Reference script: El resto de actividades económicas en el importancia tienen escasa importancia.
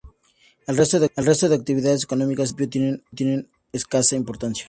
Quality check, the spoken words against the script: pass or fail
fail